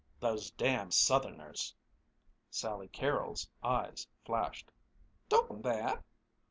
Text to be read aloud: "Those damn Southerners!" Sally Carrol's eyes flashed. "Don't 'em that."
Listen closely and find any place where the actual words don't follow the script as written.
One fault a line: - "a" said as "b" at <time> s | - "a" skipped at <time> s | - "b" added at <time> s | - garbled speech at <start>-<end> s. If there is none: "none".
none